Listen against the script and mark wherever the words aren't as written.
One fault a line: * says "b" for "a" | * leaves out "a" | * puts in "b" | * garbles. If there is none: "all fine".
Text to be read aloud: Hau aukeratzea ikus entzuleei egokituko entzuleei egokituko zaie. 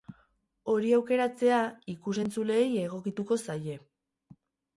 * says "Hori" for "Hau"
* leaves out "entzuleei egokituko"